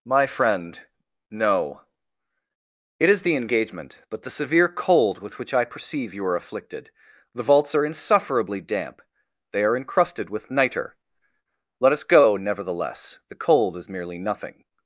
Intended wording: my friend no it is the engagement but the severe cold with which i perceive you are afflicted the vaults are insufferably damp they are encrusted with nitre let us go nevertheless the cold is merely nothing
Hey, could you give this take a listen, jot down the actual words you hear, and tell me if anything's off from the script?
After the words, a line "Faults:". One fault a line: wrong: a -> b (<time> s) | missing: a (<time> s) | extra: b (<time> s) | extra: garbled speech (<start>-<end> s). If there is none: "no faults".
my friend no it is the engagement but the severe cold with which i perceive you are afflicted the vaults are insufferably damp they are encrusted with nitre let us go nevertheless the cold is merely nothing
Faults:
no faults